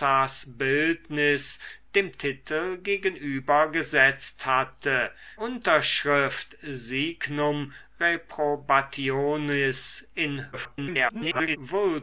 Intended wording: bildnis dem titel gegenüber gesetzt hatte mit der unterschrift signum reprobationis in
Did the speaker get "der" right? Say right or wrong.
wrong